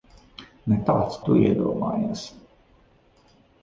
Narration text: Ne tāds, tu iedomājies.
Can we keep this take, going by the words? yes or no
yes